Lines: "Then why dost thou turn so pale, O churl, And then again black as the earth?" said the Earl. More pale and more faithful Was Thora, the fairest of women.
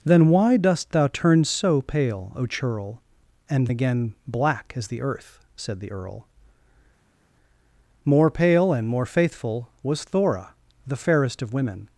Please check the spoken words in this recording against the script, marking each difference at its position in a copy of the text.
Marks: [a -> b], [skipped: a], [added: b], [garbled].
"Then why dost thou turn so pale, O churl, And [skipped: then] again black as the earth?" said the Earl. More pale and more faithful Was Thora, the fairest of women.